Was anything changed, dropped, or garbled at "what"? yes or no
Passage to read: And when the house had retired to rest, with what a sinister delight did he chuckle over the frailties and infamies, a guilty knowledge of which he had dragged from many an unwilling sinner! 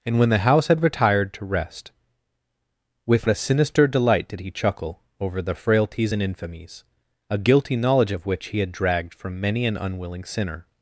yes